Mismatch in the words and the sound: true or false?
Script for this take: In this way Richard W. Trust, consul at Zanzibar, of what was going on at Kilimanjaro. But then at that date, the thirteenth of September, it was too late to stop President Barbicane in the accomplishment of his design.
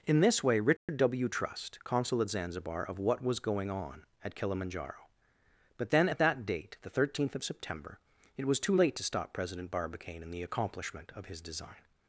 true